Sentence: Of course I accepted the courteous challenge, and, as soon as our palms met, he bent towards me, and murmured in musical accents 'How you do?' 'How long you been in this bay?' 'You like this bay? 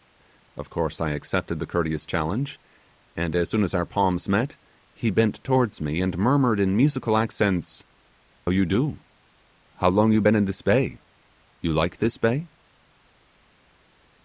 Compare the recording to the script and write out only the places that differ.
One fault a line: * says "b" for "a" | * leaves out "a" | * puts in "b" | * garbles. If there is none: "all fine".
* leaves out "How"